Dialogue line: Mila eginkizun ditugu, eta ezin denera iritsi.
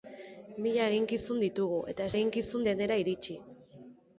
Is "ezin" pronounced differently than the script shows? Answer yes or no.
yes